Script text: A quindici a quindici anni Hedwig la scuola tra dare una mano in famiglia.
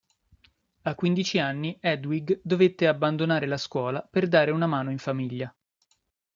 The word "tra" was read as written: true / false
false